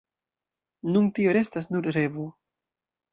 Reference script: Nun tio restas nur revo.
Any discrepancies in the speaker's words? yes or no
no